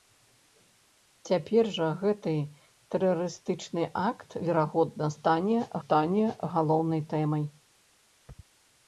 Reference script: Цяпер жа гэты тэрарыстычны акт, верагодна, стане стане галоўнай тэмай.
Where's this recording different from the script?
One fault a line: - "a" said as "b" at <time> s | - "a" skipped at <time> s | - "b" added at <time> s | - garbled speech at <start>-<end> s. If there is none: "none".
none